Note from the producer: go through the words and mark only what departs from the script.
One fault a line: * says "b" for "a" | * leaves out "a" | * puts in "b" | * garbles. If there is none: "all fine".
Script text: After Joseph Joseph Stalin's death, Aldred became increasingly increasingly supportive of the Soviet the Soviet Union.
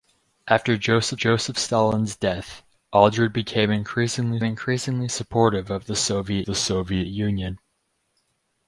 all fine